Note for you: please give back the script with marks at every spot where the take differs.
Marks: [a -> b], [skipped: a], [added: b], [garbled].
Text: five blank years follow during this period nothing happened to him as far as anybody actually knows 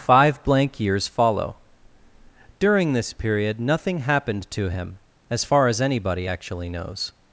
five blank years follow during this period nothing happened to him as far as anybody actually knows